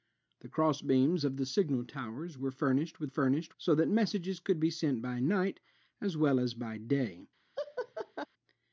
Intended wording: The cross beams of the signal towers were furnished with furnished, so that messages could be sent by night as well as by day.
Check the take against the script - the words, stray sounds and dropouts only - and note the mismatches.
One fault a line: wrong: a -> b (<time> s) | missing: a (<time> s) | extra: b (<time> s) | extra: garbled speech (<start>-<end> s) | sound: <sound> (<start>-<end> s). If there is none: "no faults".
sound: laugh (7.6-8.3 s)